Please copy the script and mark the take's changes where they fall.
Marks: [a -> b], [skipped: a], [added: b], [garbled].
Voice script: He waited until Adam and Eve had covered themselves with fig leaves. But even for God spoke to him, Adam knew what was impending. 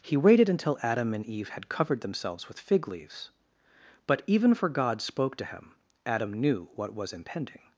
He waited until Adam and Eve had covered themselves with fig leaves. But even for God spoke to him, Adam knew what was impending.